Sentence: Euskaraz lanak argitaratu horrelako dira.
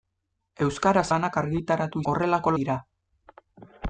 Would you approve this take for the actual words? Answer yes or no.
yes